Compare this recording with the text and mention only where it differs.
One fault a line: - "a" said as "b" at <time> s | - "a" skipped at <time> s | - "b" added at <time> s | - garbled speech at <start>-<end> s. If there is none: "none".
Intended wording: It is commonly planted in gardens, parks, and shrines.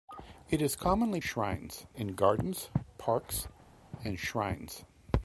- "planted" said as "shrines" at 1.2 s